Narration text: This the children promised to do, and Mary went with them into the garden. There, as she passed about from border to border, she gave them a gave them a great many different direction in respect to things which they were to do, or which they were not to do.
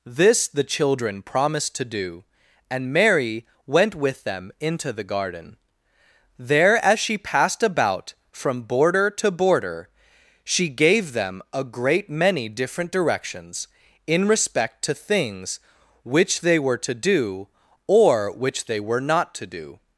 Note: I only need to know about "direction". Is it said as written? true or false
false